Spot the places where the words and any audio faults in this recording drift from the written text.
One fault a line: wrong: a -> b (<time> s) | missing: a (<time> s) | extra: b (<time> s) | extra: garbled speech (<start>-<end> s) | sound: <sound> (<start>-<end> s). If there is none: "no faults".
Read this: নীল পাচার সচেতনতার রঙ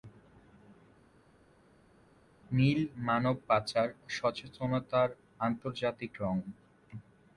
extra: মানব (3.0 s)
extra: আন্তর্জাতিক (5.4 s)